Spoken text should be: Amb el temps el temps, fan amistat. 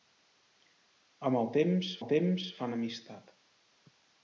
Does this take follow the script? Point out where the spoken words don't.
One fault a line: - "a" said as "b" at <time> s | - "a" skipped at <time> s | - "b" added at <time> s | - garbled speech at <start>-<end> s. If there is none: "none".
none